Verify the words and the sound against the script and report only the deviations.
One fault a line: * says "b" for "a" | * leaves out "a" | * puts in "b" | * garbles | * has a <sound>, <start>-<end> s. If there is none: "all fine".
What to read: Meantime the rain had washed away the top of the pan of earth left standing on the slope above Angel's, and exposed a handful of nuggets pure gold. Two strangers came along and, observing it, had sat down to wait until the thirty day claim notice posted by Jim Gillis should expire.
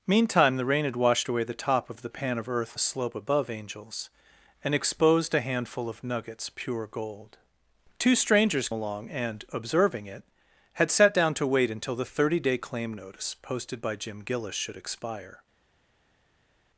* leaves out "left standing on"
* leaves out "came"